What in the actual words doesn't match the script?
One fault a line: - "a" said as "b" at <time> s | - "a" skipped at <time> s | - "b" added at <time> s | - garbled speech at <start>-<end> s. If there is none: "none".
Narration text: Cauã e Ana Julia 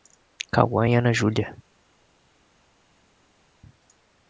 none